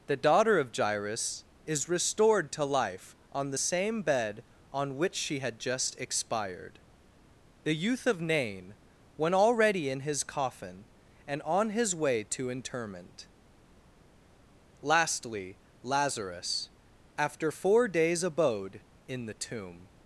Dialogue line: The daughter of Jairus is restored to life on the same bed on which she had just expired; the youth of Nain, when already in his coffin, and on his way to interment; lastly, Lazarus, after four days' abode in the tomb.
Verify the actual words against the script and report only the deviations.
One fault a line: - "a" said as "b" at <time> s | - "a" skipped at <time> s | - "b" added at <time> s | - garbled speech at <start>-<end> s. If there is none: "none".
none